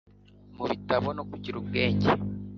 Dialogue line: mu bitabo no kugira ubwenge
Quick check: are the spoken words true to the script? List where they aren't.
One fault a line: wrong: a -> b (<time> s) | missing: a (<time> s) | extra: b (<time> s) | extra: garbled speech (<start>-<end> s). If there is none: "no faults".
no faults